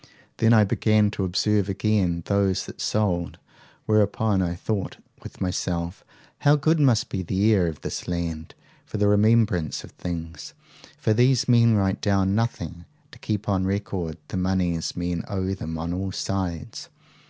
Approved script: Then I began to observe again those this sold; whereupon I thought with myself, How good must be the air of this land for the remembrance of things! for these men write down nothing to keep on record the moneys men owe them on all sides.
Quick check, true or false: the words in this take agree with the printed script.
false